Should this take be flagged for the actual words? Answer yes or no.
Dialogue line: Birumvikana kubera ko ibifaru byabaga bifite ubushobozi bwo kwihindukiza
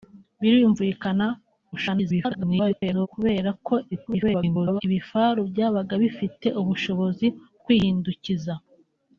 yes